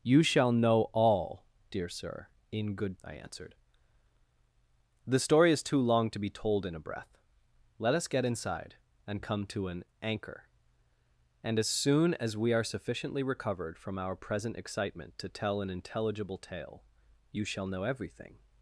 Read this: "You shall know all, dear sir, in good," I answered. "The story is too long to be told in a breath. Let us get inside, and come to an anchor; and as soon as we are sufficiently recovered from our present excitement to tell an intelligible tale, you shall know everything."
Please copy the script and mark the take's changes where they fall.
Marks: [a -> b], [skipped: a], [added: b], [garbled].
"You shall know all, dear sir, in good," I answered. "The story is too long to be told in a breath. Let us get inside, and come to an anchor; and as soon as we are sufficiently recovered from our present excitement to tell an intelligible tale, you shall know everything."